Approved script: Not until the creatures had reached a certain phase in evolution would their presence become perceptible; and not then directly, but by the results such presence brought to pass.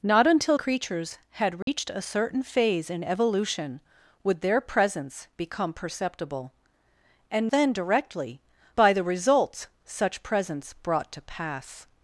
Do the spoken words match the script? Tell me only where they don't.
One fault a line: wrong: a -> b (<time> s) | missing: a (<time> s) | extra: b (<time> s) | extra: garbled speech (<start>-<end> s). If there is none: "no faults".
missing: the (0.6 s)
missing: not (7.5 s)
missing: but (8.4 s)